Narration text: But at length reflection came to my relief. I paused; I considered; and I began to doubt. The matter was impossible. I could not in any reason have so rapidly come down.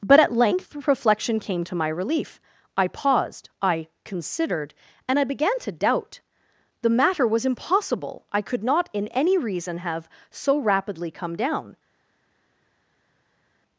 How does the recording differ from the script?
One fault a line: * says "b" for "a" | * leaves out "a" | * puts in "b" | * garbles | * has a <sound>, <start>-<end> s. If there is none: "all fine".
all fine